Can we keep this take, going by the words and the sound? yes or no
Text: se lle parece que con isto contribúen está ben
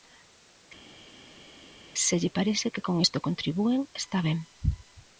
yes